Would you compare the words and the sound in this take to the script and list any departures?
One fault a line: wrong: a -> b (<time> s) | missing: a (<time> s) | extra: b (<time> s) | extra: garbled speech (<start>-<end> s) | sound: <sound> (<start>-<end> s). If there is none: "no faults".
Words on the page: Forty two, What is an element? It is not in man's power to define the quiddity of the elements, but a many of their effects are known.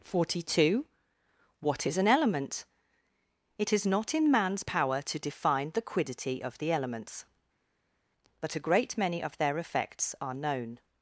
extra: great (8.6 s)